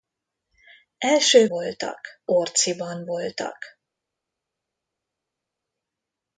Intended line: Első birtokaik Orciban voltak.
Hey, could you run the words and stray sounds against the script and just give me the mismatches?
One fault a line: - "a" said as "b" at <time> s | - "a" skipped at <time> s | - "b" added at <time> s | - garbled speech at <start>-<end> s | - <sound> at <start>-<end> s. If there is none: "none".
- "birtokaik" said as "voltak" at 1.5 s